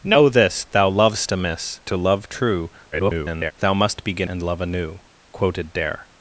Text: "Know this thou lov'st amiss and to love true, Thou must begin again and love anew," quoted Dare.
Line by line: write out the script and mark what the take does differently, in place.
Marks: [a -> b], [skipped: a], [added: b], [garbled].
"Know this thou lov'st amiss [skipped: and] to love true, [garbled] Thou must begin [skipped: again] and love anew," quoted Dare.